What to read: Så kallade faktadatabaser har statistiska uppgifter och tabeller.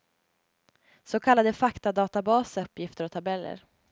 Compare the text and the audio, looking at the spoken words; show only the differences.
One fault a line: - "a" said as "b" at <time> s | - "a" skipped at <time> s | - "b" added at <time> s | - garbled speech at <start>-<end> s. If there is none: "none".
- "har statistiska" skipped at 2.6 s